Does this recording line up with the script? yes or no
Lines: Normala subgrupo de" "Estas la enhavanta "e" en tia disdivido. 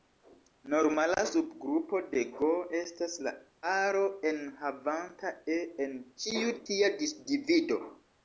no